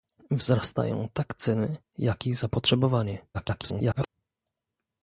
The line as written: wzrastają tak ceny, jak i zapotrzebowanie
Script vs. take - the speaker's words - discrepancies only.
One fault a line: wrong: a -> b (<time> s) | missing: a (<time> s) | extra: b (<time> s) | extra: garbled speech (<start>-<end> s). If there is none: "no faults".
extra: garbled speech (3.3-4.1 s)